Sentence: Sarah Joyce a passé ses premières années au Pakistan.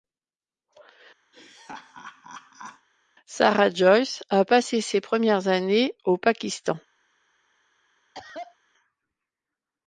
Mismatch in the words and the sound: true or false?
true